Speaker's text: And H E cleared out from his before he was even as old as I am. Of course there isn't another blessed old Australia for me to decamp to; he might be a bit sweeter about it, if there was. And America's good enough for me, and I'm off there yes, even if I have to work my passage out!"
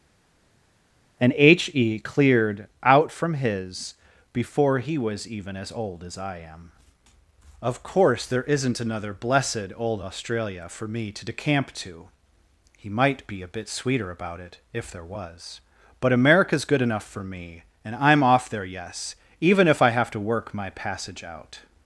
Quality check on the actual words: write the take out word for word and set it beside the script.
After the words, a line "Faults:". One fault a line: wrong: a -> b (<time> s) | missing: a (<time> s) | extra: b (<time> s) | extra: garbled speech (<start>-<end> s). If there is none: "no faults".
And H E cleared out from his before he was even as old as I am. Of course there isn't another blessed old Australia for me to decamp to; he might be a bit sweeter about it, if there was. But America's good enough for me, and I'm off there yes, even if I have to work my passage out!"
Faults:
wrong: And -> But (16.0 s)